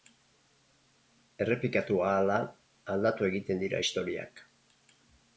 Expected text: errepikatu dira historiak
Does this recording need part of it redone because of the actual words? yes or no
yes